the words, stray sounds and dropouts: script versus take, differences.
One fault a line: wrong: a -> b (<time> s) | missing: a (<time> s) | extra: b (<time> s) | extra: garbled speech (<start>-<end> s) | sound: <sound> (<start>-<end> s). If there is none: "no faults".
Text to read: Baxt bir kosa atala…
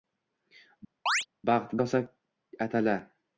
sound: chirp (1.1-1.3 s)
missing: bir (1.7 s)